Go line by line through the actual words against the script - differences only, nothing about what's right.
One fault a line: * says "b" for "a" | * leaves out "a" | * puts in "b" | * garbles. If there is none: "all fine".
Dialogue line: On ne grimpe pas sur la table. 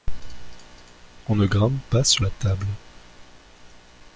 all fine